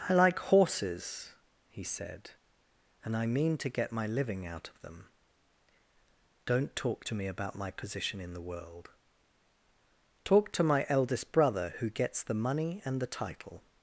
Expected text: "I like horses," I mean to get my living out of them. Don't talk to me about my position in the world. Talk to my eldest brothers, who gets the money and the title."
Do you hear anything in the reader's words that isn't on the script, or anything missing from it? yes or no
yes